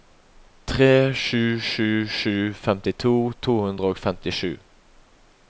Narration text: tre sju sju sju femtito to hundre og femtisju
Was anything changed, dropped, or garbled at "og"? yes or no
no